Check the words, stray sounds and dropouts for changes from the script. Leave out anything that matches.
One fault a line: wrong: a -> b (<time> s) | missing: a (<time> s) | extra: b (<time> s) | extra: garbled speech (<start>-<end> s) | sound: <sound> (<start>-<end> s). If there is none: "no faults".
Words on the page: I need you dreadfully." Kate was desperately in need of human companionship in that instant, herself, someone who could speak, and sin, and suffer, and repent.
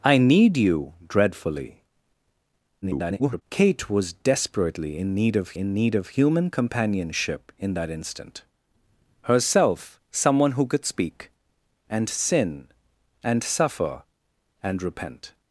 extra: garbled speech (2.8-3.4 s)
extra: in need of (5.6 s)